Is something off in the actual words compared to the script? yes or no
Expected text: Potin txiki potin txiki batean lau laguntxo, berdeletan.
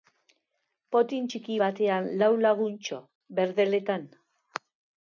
yes